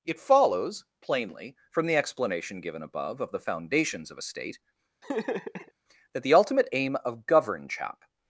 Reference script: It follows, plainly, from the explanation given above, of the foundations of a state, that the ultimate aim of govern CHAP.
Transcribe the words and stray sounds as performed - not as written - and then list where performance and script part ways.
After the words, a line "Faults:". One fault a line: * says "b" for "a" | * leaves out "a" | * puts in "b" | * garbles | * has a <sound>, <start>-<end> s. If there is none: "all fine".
It follows, plainly, from the explanation given above, of the foundations of a state, that the ultimate aim of govern CHAP.
Faults:
* has a laugh, 5.0-5.7 s